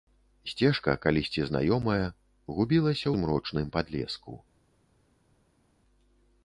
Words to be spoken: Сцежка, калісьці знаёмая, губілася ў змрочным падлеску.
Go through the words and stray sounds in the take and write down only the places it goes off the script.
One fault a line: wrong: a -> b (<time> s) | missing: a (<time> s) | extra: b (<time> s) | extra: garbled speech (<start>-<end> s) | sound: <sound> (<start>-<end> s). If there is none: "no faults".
missing: ў (3.1 s)